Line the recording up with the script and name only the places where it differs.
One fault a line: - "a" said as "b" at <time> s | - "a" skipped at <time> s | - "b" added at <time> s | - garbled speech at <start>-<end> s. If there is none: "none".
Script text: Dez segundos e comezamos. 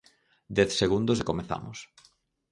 none